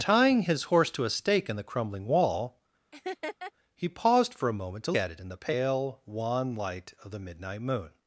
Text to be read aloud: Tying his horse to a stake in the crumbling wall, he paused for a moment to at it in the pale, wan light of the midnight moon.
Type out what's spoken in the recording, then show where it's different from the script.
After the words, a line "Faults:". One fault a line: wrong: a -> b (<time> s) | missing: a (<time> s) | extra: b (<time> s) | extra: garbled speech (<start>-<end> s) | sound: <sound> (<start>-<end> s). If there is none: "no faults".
Tying his horse to a stake in the crumbling wall, he paused for a moment to at it in the pale, wan light of the midnight moon.
Faults:
sound: laugh (2.9-3.5 s)